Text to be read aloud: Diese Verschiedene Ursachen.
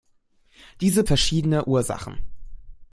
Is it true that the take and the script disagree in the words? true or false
false